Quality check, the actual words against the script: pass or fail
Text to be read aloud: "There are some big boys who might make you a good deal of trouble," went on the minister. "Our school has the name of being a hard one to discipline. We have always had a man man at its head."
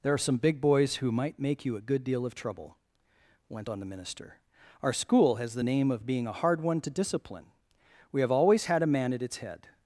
fail